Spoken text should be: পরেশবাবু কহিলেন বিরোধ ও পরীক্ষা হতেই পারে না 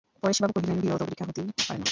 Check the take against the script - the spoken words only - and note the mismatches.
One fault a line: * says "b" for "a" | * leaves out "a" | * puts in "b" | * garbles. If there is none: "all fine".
all fine